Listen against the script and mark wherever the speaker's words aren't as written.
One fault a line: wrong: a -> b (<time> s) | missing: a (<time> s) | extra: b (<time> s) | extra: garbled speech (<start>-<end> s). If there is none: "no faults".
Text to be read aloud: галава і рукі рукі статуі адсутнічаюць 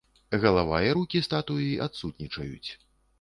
missing: рукі (1.2 s)